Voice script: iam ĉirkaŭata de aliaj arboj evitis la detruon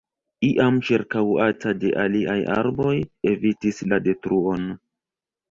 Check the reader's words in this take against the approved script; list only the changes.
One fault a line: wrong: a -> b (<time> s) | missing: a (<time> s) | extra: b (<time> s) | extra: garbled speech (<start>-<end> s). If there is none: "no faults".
no faults